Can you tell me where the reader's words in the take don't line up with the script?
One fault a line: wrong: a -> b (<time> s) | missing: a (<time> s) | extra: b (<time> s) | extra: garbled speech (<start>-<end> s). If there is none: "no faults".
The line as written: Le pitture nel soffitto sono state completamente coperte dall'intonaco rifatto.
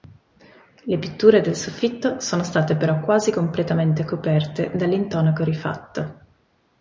wrong: nel -> del (1.4 s)
extra: però quasi (2.8 s)